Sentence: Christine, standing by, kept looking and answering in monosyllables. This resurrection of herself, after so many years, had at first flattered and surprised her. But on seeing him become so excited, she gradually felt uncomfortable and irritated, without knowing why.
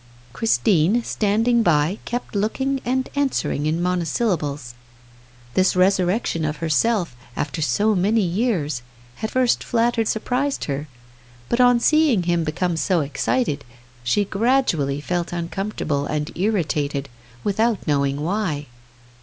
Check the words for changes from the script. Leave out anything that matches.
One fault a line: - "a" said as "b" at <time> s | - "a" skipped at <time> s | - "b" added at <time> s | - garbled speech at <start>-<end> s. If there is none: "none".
- "at" skipped at 9.3 s
- "and" skipped at 10.1 s